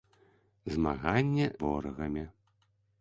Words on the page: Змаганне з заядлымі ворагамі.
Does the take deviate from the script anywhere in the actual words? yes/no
yes